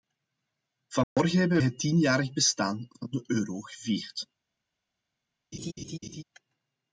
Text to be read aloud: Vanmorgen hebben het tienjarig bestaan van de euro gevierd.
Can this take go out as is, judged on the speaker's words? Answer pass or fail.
pass